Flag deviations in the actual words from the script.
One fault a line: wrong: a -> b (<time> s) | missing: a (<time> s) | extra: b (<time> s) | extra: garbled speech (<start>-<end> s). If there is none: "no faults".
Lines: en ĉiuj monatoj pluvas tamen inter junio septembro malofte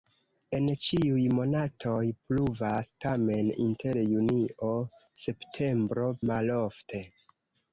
no faults